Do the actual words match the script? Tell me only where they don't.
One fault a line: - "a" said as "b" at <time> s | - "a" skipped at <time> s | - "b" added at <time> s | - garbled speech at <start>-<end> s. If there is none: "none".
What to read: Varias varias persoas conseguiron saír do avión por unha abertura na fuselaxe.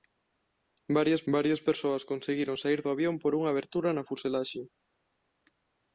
none